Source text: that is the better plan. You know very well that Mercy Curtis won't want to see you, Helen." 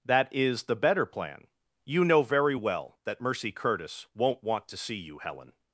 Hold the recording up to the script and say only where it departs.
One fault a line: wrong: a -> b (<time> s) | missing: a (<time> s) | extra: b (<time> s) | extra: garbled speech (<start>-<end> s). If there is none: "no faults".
no faults